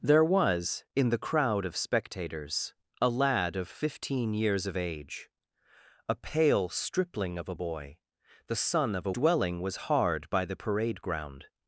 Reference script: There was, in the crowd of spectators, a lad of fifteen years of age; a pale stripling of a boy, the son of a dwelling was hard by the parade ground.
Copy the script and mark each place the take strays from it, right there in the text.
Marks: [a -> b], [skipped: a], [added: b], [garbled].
There was, in the crowd of spectators, a lad of fifteen years of age; a pale stripling of a boy, the son of a dwelling was hard by the parade ground.